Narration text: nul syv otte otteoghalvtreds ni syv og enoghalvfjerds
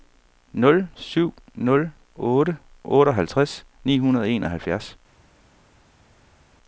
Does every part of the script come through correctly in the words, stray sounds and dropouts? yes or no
no